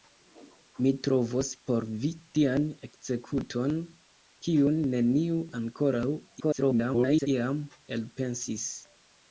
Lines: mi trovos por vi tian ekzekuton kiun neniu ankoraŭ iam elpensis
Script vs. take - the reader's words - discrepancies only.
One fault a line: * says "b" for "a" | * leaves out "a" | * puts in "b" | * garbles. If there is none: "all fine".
* garbles